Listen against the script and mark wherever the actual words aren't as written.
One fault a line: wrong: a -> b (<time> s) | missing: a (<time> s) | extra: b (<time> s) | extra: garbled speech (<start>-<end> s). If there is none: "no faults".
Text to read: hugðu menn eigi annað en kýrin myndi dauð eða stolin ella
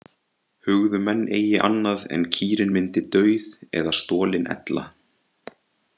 no faults